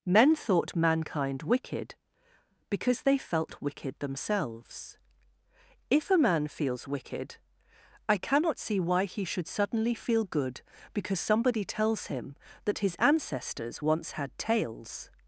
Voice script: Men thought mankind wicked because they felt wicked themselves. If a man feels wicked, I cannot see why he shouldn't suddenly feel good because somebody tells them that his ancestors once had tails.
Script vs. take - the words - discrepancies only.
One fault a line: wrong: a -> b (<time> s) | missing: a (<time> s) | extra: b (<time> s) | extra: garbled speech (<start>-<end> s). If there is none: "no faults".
wrong: shouldn't -> should (9.2 s)
wrong: them -> him (12.1 s)